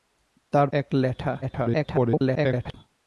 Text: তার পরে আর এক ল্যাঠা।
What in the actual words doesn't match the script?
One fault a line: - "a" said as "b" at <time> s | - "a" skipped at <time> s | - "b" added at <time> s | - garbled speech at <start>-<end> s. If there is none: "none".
- "পরে আর" skipped at 0.7 s
- garbled speech at 1.4-2.7 s